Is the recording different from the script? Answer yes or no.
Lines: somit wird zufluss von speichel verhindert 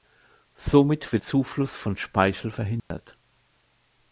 no